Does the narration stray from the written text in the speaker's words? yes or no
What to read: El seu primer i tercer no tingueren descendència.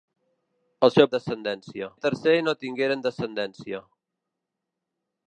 yes